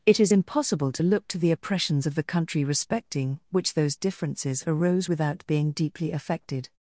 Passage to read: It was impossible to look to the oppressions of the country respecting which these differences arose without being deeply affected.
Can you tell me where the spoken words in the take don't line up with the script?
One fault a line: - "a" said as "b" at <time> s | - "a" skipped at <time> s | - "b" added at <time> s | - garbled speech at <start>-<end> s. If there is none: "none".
- "was" said as "is" at 0.2 s
- "these" said as "those" at 3.7 s